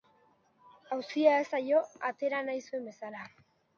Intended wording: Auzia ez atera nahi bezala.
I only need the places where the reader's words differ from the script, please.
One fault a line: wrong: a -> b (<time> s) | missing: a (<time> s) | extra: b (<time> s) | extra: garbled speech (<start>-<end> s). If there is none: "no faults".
extra: zaio (1.6 s)
extra: zuen (2.7 s)